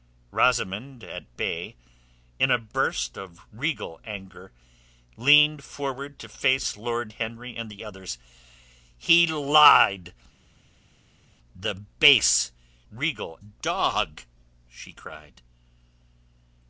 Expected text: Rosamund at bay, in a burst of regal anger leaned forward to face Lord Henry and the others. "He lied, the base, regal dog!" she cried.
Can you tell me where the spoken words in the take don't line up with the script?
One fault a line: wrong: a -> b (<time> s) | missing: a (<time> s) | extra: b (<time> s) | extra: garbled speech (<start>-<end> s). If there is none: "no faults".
no faults